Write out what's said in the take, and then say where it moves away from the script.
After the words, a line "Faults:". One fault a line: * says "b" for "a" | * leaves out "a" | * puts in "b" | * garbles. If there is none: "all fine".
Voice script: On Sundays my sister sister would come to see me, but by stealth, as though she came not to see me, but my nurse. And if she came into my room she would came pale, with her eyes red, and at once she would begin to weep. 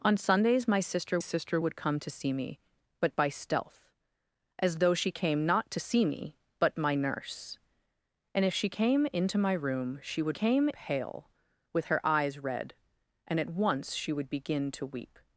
On Sundays my sister sister would come to see me, but by stealth, as though she came not to see me, but my nurse. And if she came into my room she would came pale, with her eyes red, and at once she would begin to weep.
Faults:
all fine